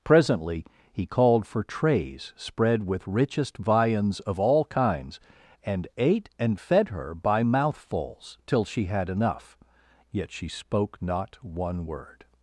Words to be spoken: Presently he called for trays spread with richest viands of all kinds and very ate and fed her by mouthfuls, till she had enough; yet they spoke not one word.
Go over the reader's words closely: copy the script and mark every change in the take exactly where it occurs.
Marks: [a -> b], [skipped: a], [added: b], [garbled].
Presently he called for trays spread with richest viands of all kinds and [skipped: very] ate and fed her by mouthfuls, till she had enough; yet [they -> she] spoke not one word.